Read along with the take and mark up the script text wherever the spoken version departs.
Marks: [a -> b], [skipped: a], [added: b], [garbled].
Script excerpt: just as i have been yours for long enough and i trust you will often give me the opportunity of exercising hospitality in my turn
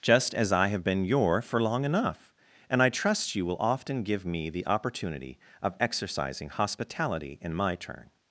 just as i have been [yours -> your] for long enough and i trust you will often give me the opportunity of exercising hospitality in my turn